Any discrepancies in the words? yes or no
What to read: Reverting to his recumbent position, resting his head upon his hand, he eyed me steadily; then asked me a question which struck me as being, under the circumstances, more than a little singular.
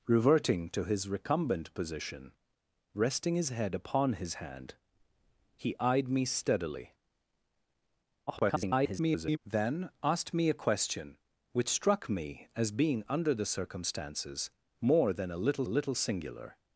yes